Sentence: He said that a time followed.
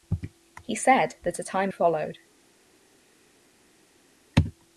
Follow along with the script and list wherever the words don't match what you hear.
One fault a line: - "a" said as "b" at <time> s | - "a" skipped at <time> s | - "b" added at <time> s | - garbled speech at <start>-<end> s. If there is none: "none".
none